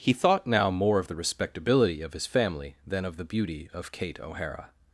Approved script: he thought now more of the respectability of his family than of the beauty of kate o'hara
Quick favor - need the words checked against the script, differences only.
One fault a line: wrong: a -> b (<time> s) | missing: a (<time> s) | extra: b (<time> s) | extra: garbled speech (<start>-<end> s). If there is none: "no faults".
no faults